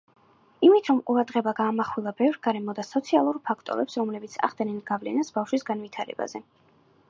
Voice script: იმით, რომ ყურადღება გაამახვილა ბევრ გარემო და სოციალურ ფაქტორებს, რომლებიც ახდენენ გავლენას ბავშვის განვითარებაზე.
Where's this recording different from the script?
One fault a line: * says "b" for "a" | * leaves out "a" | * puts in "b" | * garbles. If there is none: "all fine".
all fine